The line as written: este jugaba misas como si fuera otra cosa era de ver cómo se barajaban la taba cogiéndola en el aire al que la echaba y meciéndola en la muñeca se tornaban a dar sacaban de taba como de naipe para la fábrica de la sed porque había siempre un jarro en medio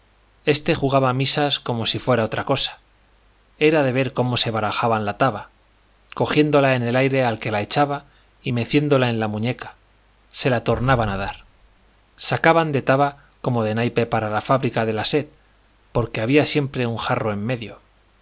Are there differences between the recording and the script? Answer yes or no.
yes